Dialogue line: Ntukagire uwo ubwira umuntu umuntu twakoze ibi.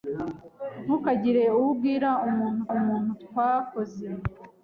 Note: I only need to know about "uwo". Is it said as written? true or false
true